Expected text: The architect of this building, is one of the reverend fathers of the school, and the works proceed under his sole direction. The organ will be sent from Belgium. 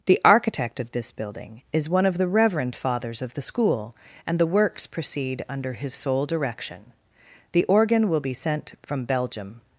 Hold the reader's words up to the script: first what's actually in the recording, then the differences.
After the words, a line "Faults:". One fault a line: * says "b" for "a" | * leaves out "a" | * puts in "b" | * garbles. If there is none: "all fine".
The architect of this building, is one of the reverend fathers of the school, and the works proceed under his sole direction. The organ will be sent from Belgium.
Faults:
all fine